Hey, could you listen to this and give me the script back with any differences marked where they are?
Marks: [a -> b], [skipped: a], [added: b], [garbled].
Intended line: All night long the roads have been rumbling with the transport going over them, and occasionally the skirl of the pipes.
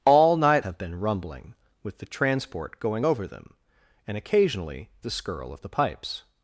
All night [skipped: long the roads] have been rumbling with the transport going over them, and occasionally the skirl of the pipes.